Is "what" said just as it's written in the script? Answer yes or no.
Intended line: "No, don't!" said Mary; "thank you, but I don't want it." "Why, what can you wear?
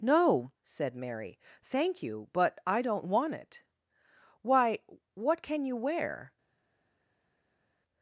yes